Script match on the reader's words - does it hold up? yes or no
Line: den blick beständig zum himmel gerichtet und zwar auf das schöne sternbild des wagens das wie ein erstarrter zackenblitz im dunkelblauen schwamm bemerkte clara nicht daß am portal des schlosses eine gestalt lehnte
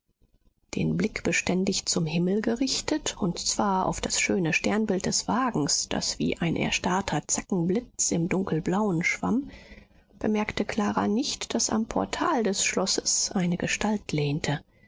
yes